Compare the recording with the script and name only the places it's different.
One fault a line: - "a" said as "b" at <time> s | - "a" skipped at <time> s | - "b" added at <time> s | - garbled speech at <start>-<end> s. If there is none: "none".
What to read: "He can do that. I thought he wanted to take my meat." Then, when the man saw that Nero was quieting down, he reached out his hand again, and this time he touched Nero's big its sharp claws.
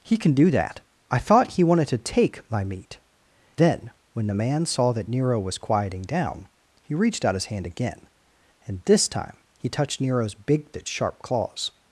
none